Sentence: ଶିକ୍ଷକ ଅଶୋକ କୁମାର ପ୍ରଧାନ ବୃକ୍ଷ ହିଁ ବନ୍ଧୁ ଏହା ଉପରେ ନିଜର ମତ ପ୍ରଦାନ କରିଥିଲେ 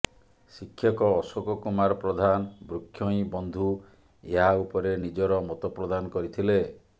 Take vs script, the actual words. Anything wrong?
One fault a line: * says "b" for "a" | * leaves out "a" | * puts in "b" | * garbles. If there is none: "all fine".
all fine